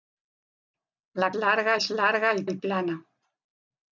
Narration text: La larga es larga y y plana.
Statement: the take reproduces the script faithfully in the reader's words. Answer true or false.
true